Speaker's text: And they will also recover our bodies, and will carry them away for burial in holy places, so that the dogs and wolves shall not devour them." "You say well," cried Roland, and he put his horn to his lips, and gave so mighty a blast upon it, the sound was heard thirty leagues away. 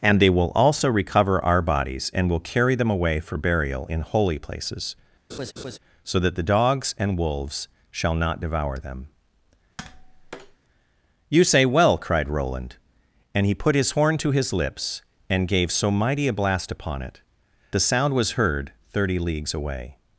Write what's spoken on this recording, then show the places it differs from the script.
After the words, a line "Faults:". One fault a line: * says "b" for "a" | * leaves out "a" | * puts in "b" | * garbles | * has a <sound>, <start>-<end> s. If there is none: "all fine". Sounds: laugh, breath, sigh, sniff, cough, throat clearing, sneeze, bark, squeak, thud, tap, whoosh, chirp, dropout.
And they will also recover our bodies, and will carry them away for burial in holy places, so that the dogs and wolves shall not devour them." "You say well," cried Roland, and he put his horn to his lips, and gave so mighty a blast upon it, the sound was heard thirty leagues away.
Faults:
* has a laugh, 5.3-5.8 s
* has a tap, 9.8-10.6 s